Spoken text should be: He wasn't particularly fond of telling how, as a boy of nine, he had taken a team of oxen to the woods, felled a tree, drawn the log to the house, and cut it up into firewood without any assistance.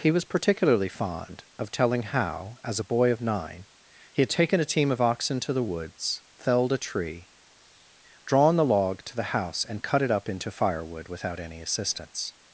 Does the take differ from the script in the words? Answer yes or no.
yes